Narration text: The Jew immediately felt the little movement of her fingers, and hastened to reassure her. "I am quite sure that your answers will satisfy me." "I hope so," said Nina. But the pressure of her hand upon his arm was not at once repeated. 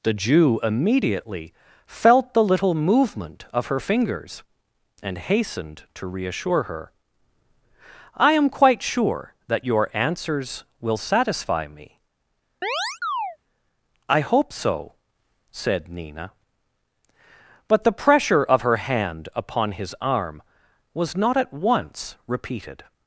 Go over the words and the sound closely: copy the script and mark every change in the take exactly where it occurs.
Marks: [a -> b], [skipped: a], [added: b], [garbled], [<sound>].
The Jew immediately felt the little movement of her fingers, and hastened to reassure her. "I am quite sure that your answers will satisfy me." [chirp] "I hope so," said Nina. But the pressure of her hand upon his arm was not at once repeated.